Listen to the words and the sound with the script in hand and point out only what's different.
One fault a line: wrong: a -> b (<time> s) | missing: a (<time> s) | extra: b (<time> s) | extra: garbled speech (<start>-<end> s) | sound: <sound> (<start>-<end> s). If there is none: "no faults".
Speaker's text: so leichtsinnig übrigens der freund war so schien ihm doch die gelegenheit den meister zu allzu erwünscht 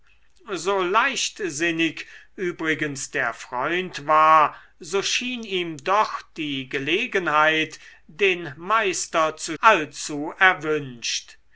no faults